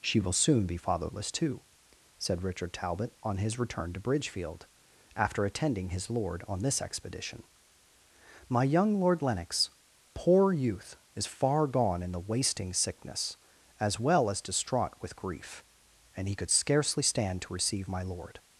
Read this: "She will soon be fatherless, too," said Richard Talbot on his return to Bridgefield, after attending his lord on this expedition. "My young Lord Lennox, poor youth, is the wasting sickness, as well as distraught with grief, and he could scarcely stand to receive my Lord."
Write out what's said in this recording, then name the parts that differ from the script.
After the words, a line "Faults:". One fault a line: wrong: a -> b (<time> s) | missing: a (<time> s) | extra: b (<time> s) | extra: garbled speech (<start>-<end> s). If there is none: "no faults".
"She will soon be fatherless, too," said Richard Talbot on his return to Bridgefield, after attending his lord on this expedition. "My young Lord Lennox, poor youth, is far gone in the wasting sickness, as well as distraught with grief, and he could scarcely stand to receive my Lord."
Faults:
extra: far gone in (11.3 s)